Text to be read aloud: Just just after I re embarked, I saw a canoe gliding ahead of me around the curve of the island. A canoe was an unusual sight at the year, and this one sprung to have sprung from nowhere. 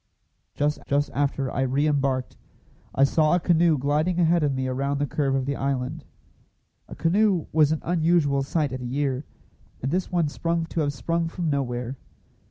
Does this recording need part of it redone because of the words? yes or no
no